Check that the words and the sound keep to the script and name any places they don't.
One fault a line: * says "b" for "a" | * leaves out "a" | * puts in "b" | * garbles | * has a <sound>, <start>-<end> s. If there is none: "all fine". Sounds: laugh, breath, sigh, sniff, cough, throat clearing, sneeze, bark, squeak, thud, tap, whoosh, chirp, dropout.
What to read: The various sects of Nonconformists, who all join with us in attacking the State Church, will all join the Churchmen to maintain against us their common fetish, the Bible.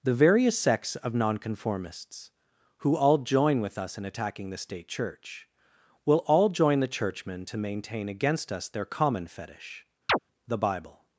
* has a chirp, 10.1-10.2 s